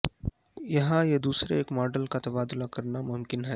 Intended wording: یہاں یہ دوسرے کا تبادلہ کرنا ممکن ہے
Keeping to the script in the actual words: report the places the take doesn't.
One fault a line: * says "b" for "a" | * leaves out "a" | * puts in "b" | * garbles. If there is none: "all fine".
* puts in "ایک ماڈل"